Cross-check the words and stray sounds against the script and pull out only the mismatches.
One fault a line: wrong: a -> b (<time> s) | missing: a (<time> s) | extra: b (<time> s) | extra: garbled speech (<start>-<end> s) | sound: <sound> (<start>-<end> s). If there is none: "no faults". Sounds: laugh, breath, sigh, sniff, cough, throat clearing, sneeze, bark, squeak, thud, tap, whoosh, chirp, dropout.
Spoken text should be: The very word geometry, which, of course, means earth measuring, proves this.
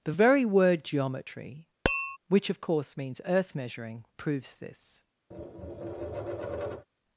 sound: tap (1.9-2.2 s)
sound: tap (5.3-6.9 s)